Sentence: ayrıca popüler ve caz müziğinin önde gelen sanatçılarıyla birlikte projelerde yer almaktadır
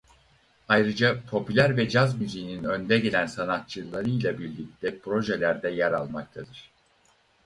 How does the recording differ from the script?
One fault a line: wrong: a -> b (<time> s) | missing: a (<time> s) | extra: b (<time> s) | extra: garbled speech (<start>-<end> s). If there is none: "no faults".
no faults